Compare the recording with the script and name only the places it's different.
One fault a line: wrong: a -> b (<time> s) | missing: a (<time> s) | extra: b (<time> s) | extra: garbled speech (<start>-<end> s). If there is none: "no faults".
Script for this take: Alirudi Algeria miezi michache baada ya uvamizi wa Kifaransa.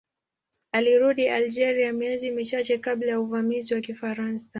wrong: baada -> kabla (2.8 s)